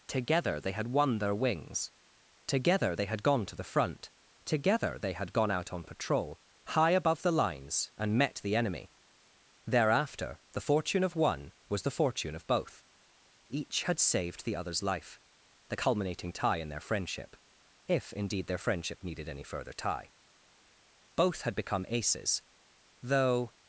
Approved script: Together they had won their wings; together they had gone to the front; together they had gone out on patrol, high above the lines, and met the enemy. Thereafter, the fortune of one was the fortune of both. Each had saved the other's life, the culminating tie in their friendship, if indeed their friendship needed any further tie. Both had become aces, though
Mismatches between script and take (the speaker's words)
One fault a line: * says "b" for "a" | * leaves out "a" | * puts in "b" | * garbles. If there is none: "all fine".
all fine